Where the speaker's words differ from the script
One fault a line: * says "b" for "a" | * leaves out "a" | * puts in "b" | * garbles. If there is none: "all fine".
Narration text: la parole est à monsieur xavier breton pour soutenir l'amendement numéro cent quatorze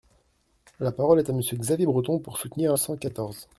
* leaves out "l'amendement numéro"